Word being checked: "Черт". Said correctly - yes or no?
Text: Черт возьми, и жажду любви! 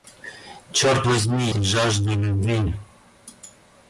yes